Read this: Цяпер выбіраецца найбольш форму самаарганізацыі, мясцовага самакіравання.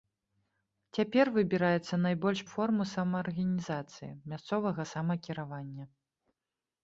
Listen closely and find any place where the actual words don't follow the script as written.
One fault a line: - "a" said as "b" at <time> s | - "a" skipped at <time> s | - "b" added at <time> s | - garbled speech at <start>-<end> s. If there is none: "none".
none